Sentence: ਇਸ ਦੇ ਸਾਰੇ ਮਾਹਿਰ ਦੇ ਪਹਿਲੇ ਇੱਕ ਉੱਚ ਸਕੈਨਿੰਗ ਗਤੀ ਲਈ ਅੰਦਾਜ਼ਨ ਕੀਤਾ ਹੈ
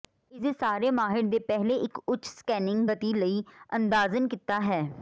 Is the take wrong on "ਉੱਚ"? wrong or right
right